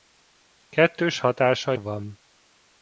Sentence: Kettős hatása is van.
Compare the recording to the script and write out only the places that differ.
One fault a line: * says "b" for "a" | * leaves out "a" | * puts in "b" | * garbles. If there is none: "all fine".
* leaves out "is"